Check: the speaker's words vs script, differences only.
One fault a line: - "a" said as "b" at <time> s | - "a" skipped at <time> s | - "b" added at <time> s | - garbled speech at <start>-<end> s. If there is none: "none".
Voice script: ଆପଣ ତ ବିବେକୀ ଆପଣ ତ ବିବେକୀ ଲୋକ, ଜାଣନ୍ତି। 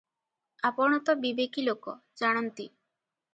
- "ଆପଣ ତ ବିବେକୀ" skipped at 1.7 s